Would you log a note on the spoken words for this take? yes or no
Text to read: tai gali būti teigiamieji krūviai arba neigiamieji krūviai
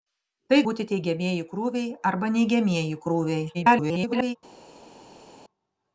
yes